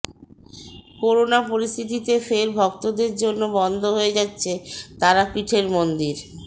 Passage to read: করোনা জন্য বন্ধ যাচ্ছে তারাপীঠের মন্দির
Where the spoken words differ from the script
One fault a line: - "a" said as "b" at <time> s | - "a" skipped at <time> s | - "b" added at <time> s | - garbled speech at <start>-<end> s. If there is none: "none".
- "পরিস্থিতিতে ফের ভক্তদের" added at 1.5 s
- "হয়ে" added at 4.0 s